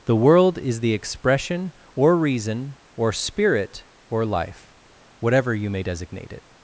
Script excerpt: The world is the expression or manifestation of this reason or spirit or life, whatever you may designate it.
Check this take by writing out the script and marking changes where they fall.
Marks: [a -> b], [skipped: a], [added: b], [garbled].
The world is the expression or [skipped: manifestation of this] reason or spirit or life, whatever you may designate it.